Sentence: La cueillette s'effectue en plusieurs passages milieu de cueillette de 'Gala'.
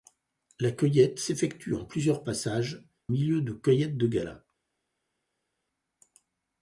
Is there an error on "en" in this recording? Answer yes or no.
no